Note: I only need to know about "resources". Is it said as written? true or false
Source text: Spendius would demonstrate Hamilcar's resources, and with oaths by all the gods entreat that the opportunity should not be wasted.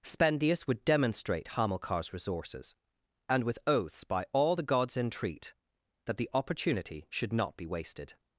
true